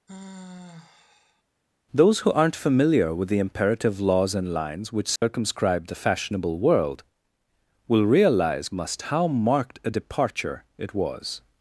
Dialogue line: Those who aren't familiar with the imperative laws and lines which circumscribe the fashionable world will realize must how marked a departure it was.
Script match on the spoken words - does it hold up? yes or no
yes